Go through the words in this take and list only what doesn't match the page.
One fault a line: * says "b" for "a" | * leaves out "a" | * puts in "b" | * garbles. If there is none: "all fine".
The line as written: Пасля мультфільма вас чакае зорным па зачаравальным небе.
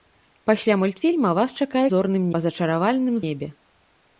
all fine